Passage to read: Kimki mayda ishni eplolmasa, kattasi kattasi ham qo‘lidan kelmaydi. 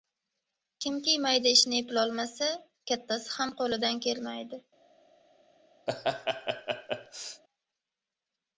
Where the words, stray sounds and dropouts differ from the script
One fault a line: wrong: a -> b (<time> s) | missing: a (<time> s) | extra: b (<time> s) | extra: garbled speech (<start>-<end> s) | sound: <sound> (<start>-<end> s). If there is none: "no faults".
missing: kattasi (3.3 s)
sound: laugh (5.9-7.4 s)